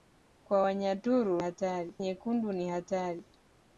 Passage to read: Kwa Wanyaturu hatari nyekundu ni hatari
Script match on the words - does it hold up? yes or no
yes